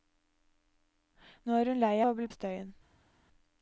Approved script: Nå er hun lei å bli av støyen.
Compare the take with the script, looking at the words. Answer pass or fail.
pass